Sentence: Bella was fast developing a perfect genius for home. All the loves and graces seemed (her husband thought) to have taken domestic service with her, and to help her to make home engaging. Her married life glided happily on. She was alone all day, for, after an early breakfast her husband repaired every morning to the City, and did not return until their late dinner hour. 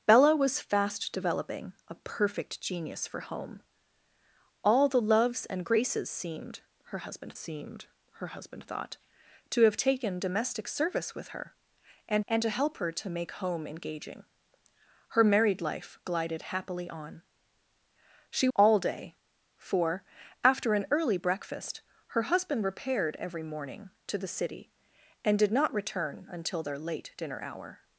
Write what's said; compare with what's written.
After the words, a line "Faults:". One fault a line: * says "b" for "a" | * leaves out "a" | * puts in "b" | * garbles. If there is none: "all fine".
Bella was fast developing a perfect genius for home. All the loves and graces seemed (her husband seemed her husband thought) to have taken domestic service with her, and and to help her to make home engaging. Her married life glided happily on. She all day, for, after an early breakfast her husband repaired every morning to the City, and did not return until their late dinner hour.
Faults:
* puts in "seemed her husband"
* puts in "and"
* leaves out "was alone"